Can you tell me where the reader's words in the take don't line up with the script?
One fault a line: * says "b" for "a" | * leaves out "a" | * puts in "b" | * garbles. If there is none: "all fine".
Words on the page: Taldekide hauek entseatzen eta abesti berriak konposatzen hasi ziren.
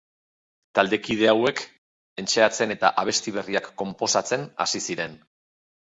all fine